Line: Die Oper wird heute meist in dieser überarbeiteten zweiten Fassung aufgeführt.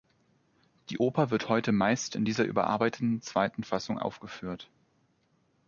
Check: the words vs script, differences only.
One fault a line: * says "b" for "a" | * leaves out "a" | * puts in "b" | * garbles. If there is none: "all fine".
all fine